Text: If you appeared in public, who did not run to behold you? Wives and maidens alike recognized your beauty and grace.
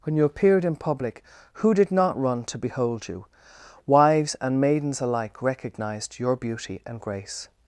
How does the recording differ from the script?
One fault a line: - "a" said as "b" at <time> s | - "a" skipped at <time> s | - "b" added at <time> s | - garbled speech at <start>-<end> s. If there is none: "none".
- "If" said as "When" at 0.0 s